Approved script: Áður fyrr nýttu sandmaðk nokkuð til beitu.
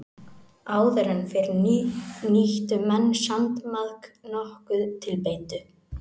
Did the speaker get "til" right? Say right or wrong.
right